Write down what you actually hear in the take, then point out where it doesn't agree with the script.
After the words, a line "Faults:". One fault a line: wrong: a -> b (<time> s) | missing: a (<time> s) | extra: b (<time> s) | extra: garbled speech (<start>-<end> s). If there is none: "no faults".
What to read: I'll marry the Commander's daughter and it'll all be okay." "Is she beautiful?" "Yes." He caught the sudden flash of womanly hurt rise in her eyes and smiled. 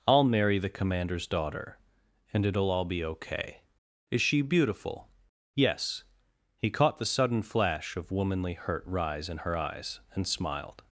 I'll marry the Commander's daughter and it'll all be okay." "Is she beautiful?" "Yes." He caught the sudden flash of womanly hurt rise in her eyes and smiled.
Faults:
no faults